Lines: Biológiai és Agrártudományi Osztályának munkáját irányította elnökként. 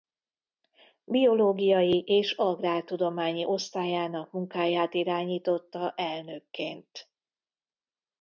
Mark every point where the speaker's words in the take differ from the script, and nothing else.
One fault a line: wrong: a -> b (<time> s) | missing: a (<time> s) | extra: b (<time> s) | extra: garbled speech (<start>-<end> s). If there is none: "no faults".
no faults